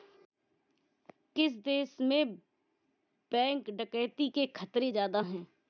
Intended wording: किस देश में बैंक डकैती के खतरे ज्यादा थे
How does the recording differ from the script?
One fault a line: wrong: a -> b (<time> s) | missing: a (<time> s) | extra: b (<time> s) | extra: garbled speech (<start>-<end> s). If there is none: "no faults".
wrong: थे -> हैं (5.2 s)